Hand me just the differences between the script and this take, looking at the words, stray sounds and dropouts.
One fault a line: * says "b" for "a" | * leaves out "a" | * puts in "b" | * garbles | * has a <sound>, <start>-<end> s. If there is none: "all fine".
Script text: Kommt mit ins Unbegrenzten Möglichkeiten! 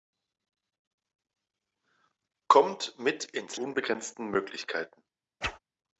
* has a whoosh, 5.4-5.6 s